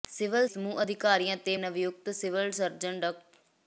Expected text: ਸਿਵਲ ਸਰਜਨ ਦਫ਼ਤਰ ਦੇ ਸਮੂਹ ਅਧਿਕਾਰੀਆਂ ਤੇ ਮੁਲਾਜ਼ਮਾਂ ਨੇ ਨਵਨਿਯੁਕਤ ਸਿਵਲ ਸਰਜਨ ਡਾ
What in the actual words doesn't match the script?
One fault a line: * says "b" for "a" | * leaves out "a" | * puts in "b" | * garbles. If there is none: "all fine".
* leaves out "ਸਰਜਨ ਦਫ਼ਤਰ ਦੇ"
* leaves out "ਮੁਲਾਜ਼ਮਾਂ ਨੇ"